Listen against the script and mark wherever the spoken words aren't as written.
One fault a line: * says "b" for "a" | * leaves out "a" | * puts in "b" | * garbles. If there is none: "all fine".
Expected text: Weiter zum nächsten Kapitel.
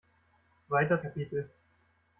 * leaves out "zum nächsten"